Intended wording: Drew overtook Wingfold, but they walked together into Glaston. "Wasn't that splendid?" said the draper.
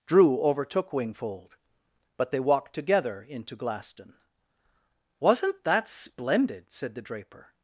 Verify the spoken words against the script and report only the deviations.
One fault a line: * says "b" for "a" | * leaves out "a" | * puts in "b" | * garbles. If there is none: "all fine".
all fine